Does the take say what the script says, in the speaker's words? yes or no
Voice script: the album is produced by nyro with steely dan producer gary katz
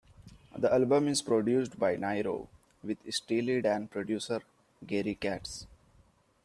yes